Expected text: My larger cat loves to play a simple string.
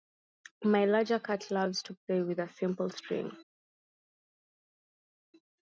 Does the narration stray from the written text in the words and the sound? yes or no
yes